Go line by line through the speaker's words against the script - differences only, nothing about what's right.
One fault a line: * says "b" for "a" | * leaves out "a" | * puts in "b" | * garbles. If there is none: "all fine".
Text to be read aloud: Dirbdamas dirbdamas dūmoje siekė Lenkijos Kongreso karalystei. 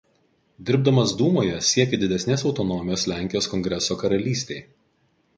* leaves out "dirbdamas"
* puts in "didesnės autonomijos"